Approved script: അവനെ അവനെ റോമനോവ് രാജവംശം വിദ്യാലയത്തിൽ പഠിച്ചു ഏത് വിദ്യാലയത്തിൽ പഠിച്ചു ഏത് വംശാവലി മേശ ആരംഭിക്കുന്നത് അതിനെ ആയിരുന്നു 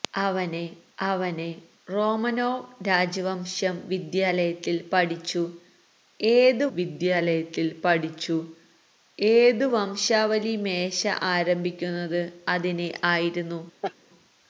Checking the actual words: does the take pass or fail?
pass